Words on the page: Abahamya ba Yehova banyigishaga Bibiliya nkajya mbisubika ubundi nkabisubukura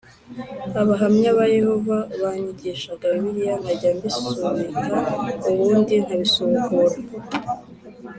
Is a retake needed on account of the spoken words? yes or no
no